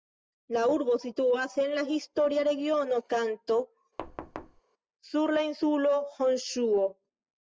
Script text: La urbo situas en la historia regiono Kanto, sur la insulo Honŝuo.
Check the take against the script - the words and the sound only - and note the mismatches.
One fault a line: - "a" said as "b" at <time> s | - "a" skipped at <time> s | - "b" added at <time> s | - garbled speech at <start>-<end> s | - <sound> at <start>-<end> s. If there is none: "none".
- thud at 4.0-4.6 s